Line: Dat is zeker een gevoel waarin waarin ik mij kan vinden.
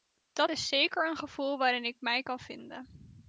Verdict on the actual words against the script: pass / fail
fail